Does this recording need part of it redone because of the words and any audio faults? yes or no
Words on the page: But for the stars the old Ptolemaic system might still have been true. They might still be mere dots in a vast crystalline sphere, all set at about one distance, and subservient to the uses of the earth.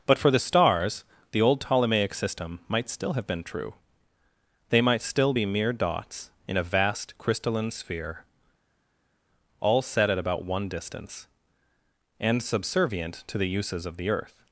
no